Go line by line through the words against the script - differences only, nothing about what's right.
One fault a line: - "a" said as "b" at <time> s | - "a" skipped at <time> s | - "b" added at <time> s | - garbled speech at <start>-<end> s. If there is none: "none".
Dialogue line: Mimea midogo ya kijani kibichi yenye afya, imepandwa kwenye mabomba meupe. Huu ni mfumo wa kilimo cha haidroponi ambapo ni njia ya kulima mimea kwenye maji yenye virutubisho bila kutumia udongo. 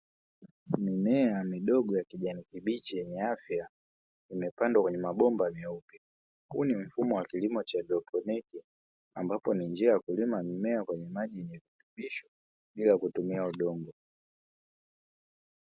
none